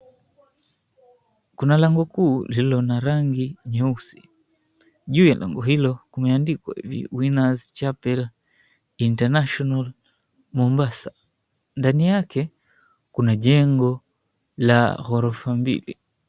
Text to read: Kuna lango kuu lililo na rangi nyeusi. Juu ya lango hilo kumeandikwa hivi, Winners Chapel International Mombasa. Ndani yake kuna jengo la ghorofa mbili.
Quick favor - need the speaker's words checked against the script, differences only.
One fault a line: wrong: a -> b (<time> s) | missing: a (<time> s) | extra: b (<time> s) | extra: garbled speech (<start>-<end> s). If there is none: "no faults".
no faults